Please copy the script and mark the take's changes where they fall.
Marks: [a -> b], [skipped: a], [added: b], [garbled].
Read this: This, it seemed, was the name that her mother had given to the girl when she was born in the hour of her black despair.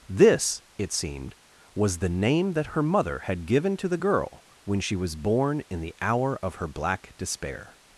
This, it seemed, was the name that her mother had given to the girl when she was born in the hour of her black despair.